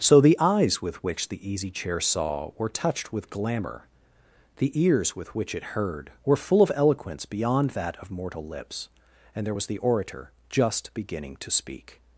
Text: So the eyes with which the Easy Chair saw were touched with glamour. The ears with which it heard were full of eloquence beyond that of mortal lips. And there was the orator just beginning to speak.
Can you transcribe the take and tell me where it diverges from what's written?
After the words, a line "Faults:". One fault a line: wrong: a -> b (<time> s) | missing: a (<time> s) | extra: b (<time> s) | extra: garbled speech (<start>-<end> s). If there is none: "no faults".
So the eyes with which the Easy Chair saw were touched with glamour. The ears with which it heard were full of eloquence beyond that of mortal lips. And there was the orator just beginning to speak.
Faults:
no faults